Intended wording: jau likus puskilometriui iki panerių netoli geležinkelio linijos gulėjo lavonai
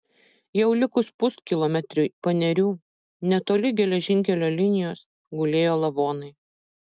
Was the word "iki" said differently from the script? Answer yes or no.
yes